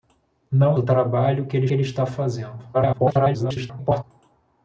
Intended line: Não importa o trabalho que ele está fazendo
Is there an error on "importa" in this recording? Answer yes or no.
yes